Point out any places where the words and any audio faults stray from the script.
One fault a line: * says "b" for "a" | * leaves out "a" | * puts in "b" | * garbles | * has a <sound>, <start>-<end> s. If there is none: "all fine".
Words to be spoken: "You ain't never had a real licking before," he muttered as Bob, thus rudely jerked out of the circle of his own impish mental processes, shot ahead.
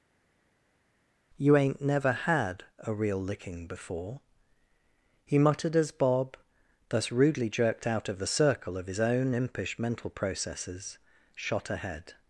all fine